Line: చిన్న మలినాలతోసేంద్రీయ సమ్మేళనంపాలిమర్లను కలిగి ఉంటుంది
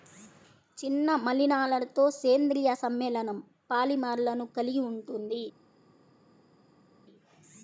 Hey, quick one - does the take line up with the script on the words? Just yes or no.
yes